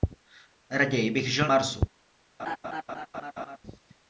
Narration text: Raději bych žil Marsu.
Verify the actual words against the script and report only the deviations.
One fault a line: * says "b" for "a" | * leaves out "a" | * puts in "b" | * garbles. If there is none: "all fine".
all fine